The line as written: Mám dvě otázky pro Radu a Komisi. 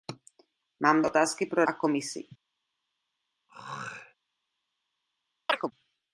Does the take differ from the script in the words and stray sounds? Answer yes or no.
yes